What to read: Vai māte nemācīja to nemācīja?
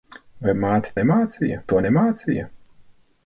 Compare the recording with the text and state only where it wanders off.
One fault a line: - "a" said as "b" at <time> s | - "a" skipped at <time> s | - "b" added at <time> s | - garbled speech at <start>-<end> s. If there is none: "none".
none